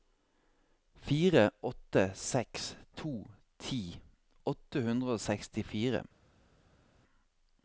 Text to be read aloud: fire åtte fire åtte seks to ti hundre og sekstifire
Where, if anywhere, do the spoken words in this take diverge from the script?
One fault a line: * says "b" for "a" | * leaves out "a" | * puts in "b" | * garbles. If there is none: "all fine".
* leaves out "fire åtte"
* puts in "åtte"